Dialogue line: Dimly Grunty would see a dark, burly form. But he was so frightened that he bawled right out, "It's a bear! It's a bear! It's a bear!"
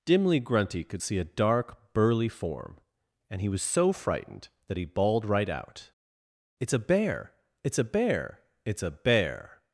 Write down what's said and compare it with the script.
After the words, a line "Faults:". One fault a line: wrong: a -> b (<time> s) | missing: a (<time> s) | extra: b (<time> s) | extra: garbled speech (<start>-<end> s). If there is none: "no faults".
Dimly Grunty could see a dark, burly form. And he was so frightened that he bawled right out, "It's a bear! It's a bear! It's a bear!"
Faults:
wrong: would -> could (0.8 s)
wrong: But -> And (3.3 s)